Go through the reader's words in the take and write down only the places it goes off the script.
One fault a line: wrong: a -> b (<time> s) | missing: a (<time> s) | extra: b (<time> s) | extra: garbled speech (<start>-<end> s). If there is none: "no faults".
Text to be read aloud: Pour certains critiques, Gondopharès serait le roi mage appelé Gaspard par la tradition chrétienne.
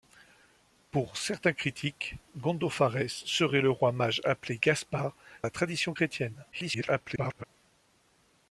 missing: par (5.1 s)
extra: garbled speech (6.5-7.4 s)